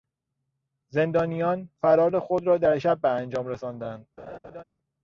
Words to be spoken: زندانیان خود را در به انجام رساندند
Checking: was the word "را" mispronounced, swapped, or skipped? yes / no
no